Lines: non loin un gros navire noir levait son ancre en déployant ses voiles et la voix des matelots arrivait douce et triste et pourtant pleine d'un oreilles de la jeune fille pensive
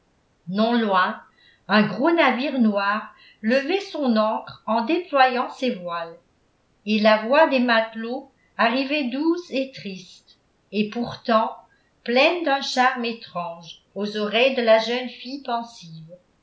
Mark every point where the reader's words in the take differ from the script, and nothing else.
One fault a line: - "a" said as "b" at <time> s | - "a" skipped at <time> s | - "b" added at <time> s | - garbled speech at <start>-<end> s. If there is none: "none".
- "charme étrange aux" added at 12.6 s